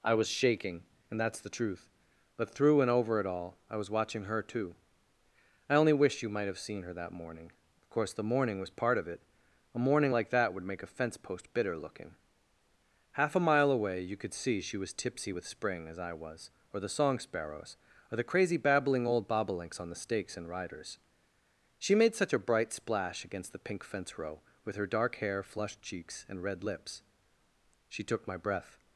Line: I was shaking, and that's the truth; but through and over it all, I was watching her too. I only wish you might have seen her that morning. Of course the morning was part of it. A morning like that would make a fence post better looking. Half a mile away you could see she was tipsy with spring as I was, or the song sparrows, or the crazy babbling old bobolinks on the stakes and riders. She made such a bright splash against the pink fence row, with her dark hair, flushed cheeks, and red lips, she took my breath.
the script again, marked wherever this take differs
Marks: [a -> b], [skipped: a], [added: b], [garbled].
I was shaking, and that's the truth; but through and over it all, I was watching her too. I only wish you might have seen her that morning. Of course the morning was part of it. A morning like that would make a fence post [better -> bitter] looking. Half a mile away you could see she was tipsy with spring as I was, or the song sparrows, or the crazy babbling old bobolinks on the stakes and riders. She made such a bright splash against the pink fence row, with her dark hair, flushed cheeks, and red lips, she took my breath.